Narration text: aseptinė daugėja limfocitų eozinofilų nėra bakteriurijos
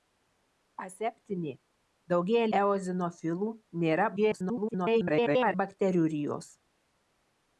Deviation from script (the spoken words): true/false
true